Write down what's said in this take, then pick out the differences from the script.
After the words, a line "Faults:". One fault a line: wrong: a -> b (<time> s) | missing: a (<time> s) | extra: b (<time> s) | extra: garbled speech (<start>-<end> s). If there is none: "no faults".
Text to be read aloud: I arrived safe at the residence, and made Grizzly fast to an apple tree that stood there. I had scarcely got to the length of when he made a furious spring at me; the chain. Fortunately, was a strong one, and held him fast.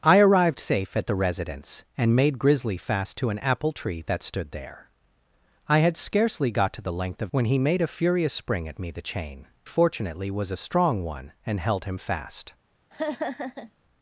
I arrived safe at the residence, and made Grizzly fast to an apple tree that stood there. I had scarcely got to the length of when he made a furious spring at me; the chain. Fortunately, was a strong one, and held him fast.
Faults:
no faults